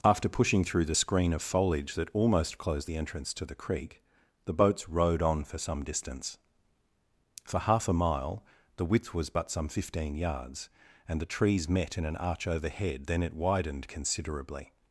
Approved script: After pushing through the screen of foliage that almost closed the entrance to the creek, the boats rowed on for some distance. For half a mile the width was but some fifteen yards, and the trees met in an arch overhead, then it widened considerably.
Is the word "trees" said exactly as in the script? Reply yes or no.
yes